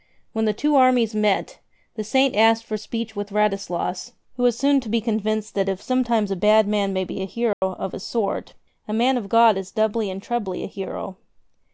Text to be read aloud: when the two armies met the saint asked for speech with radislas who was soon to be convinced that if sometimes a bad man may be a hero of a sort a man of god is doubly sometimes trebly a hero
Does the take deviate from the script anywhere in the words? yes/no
yes